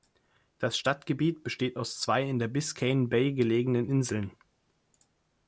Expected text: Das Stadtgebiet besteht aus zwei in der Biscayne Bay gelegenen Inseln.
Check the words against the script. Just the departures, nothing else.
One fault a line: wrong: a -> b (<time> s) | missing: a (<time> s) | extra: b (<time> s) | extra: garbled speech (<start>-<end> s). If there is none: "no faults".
no faults